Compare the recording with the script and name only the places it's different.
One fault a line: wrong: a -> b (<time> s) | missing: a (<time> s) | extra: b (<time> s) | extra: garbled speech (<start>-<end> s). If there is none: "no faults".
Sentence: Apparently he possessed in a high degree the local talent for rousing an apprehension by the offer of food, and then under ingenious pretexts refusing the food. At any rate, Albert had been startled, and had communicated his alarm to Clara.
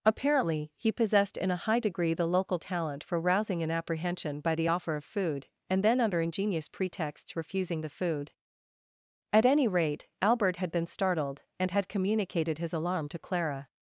no faults